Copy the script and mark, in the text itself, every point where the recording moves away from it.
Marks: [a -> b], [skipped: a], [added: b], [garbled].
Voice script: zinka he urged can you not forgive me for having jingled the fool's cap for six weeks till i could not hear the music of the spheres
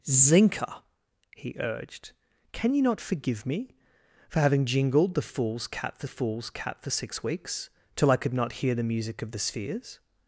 zinka he urged can you not forgive me for having jingled the fool's cap for [added: fool's cap for] six weeks till i could not hear the music of the spheres